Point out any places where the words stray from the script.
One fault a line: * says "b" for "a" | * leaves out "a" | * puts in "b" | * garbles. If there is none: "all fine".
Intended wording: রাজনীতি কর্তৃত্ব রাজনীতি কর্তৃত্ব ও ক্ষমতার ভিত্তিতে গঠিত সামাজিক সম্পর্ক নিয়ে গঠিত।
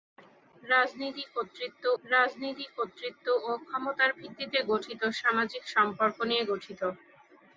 all fine